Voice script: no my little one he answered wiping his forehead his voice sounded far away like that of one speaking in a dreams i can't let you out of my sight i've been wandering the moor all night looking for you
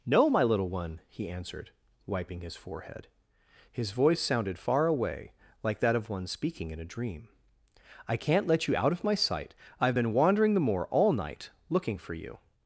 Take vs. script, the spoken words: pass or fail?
fail